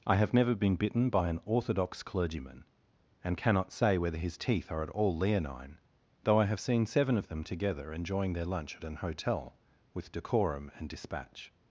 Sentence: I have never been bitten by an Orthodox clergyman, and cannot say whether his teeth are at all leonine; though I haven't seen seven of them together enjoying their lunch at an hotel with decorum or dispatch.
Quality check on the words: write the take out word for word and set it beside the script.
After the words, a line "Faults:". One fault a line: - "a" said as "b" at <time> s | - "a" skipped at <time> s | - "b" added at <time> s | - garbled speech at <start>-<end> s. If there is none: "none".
I have never been bitten by an Orthodox clergyman, and cannot say whether his teeth are at all leonine; though I have seen seven of them together enjoying their lunch at an hotel with decorum and dispatch.
Faults:
- "haven't" said as "have" at 6.5 s
- "or" said as "and" at 10.7 s